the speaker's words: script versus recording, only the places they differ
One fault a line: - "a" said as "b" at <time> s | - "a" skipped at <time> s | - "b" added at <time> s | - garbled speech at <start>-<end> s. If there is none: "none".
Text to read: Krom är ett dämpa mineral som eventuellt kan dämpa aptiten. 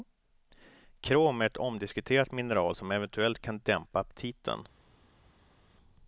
- "dämpa" said as "omdiskuterat" at 1.6 s